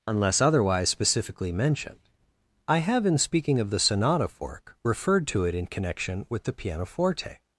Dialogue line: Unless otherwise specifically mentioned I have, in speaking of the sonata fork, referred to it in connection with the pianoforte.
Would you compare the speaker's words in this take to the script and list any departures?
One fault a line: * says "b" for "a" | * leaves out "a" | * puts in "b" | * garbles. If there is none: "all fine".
all fine